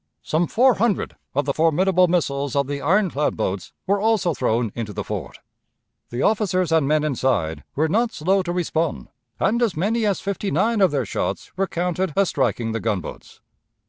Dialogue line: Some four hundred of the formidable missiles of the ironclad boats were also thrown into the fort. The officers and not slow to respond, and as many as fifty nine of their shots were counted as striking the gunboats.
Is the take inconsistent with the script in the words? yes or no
yes